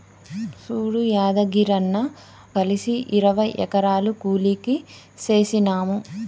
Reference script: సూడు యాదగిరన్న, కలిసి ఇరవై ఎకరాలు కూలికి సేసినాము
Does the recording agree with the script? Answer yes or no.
yes